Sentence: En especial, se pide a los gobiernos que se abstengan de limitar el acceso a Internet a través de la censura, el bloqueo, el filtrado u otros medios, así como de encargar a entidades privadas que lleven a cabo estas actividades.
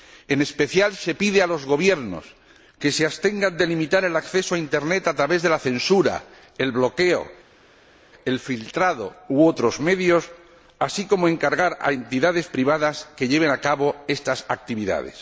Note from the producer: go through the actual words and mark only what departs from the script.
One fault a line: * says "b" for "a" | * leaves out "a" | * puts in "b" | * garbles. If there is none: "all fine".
all fine